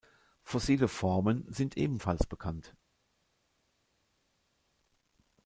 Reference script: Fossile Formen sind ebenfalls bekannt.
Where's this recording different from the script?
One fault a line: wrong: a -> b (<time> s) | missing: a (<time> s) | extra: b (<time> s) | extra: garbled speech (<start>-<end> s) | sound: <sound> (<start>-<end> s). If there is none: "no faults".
no faults